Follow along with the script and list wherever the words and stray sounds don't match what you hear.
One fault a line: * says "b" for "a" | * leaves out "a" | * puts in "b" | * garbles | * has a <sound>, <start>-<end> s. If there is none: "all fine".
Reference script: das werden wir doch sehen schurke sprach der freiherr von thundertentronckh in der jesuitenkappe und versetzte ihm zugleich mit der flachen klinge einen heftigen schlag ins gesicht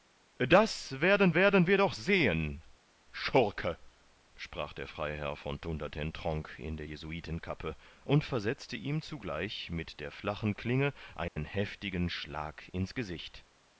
* puts in "werden"
* has a dropout, 11.3-11.4 s